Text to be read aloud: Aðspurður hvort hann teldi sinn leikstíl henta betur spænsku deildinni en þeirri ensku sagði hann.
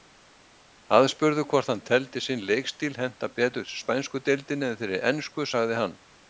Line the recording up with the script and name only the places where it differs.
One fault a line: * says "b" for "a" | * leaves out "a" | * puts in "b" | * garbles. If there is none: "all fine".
all fine